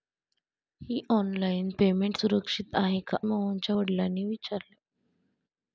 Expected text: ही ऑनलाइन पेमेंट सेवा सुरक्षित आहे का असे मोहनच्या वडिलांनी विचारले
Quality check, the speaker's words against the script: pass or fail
fail